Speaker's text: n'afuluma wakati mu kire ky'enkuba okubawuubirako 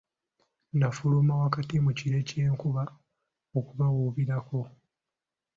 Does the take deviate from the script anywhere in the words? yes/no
no